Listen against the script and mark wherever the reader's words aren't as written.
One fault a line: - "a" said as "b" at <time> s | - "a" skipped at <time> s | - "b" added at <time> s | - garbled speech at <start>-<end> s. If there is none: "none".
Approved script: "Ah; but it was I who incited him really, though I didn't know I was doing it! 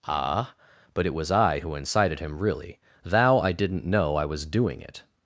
- "though" said as "thou" at 3.0 s